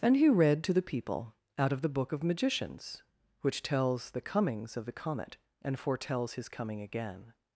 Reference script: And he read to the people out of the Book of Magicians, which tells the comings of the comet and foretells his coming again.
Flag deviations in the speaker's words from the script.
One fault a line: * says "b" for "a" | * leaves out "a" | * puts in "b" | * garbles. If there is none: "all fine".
all fine